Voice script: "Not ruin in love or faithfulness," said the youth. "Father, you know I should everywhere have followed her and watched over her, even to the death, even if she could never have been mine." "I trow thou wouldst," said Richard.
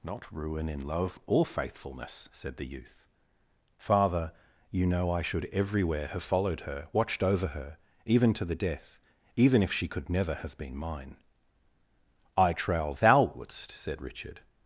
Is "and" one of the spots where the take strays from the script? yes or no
yes